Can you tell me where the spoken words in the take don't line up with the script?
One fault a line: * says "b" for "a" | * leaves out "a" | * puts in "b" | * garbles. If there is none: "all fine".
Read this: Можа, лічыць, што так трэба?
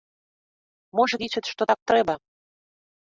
all fine